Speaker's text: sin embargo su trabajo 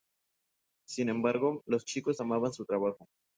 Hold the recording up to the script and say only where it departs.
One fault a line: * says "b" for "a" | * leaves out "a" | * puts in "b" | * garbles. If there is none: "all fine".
* puts in "los chicos amaban"